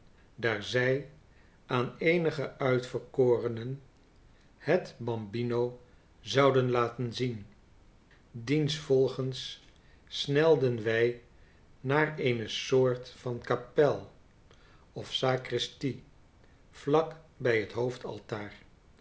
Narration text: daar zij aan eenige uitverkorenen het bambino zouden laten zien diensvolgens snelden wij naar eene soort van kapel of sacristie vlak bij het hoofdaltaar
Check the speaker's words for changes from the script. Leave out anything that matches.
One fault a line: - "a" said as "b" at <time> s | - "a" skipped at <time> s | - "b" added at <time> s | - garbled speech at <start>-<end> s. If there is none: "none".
none